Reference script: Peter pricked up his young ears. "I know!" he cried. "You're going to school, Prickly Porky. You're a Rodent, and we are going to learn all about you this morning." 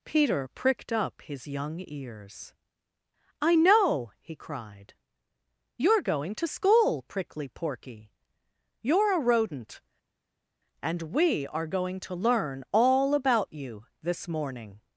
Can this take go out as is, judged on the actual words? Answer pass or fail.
pass